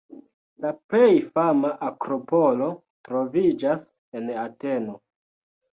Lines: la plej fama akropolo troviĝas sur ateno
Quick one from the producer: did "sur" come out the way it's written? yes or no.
no